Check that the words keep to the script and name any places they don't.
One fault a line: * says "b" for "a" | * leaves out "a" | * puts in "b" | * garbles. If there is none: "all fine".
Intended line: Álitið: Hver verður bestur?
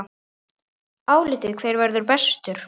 all fine